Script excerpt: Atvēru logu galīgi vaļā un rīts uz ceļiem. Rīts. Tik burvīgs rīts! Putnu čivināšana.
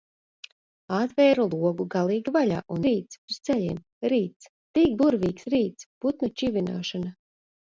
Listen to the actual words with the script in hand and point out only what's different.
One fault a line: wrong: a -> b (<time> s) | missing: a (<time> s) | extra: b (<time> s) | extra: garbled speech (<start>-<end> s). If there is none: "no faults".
no faults